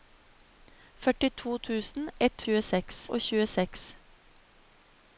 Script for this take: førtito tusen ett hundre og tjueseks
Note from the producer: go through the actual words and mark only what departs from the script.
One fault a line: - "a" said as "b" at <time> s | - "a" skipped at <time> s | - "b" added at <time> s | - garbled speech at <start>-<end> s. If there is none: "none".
- "hundre" said as "tjueseks" at 2.4 s